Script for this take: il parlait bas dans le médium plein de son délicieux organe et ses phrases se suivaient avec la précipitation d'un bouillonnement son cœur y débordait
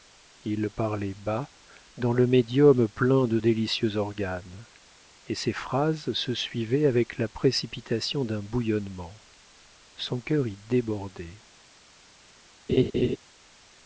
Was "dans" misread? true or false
false